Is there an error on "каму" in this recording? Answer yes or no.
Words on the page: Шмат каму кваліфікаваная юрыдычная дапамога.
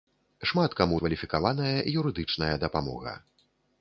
no